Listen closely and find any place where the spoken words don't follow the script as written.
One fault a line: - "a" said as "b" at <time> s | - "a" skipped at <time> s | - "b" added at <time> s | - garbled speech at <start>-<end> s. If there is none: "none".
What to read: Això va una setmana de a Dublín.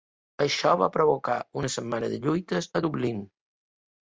- "provocar" added at 0.9 s
- "lluites" added at 2.2 s